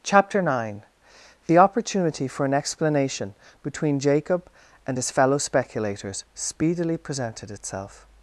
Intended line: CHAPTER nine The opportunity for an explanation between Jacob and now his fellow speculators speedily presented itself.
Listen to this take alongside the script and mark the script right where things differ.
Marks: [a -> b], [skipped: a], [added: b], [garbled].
CHAPTER nine The opportunity for an explanation between Jacob and [skipped: now] his fellow speculators speedily presented itself.